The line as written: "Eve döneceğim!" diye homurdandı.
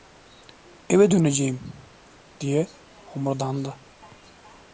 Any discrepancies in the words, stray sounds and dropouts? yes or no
no